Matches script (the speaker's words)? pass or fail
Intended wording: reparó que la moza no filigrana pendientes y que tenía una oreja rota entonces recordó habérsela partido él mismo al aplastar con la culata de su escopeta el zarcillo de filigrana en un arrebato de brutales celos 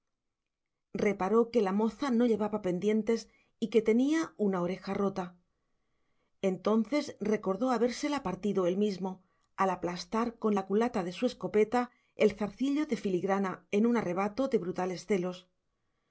fail